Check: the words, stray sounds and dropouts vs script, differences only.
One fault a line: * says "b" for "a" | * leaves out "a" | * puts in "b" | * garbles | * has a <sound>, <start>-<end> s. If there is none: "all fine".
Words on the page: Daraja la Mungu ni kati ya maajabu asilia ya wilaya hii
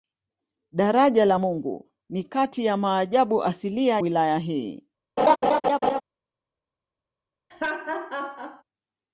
* leaves out "ya"
* has a laugh, 5.2-6.0 s
* has a laugh, 7.5-8.6 s